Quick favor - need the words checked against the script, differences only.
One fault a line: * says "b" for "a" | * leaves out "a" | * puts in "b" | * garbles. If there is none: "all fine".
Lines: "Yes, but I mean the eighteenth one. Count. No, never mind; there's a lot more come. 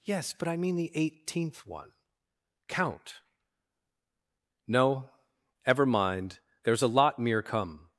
* says "ever" for "never"
* says "mere" for "more"